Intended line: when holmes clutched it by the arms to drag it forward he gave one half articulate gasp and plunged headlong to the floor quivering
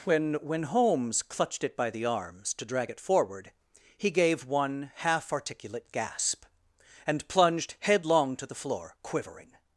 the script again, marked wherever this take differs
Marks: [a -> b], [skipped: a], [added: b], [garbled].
when [added: when] holmes clutched it by the arms to drag it forward he gave one half articulate gasp and plunged headlong to the floor quivering